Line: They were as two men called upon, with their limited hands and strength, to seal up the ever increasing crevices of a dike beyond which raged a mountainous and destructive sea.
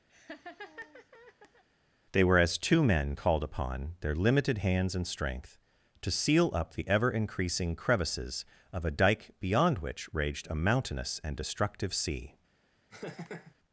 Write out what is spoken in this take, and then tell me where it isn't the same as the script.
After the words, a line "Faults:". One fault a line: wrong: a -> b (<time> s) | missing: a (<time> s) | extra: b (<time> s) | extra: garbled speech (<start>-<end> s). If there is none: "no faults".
They were as two men called upon, their limited hands and strength, to seal up the ever increasing crevices of a dike beyond which raged a mountainous and destructive sea.
Faults:
missing: with (3.9 s)